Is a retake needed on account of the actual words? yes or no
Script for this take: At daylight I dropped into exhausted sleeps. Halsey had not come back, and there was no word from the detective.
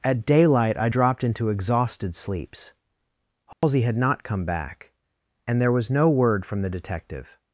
no